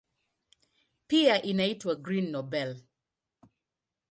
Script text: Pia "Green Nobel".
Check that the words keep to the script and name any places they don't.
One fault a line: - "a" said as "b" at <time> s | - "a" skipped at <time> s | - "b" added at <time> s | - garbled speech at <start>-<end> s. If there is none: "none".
- "inaitwa" added at 1.4 s